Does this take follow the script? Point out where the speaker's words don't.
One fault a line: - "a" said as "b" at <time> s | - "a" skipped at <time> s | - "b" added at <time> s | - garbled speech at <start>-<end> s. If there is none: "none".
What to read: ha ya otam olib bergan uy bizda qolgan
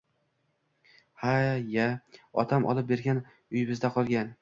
none